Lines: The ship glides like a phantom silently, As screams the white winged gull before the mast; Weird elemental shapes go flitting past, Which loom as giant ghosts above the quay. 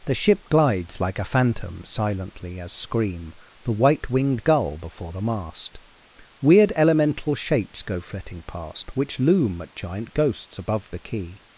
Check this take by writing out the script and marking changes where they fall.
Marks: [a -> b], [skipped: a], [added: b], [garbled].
The ship glides like a phantom silently, As [screams -> scream] the white winged gull before the mast; Weird elemental shapes go flitting past, Which loom [as -> at] giant ghosts above the quay.